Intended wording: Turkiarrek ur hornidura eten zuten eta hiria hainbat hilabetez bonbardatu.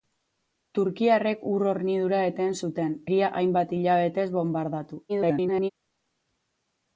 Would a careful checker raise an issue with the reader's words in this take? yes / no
yes